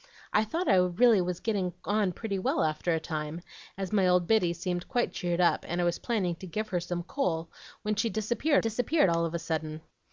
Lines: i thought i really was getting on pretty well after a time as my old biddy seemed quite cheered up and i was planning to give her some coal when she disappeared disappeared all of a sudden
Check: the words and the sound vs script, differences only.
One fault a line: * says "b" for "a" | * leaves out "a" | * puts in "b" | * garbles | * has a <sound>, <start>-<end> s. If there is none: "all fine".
all fine